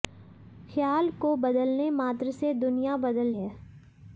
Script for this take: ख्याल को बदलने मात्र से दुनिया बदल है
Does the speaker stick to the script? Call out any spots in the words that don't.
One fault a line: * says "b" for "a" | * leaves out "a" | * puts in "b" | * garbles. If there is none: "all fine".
all fine